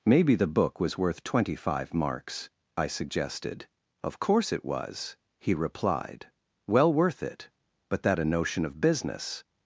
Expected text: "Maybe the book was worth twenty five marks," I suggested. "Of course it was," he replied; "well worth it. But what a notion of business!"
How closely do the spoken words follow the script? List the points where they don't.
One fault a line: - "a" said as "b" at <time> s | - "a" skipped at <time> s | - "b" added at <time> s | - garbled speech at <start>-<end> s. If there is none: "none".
- "what" said as "that" at 8.0 s